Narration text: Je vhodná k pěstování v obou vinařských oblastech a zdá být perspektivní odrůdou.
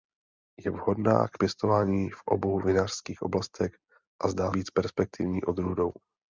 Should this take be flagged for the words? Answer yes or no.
no